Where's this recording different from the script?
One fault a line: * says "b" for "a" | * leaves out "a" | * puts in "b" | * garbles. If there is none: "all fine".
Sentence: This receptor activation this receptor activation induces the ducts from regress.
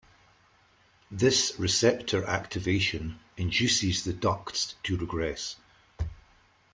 * leaves out "this receptor activation"
* says "to" for "from"